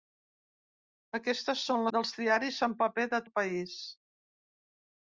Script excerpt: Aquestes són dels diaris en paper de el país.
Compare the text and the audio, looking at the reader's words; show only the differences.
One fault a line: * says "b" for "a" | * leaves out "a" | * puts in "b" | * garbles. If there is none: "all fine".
all fine